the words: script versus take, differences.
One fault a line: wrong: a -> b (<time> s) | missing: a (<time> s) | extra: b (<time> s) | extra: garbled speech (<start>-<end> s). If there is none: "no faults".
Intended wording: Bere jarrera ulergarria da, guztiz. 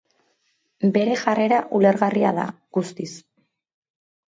no faults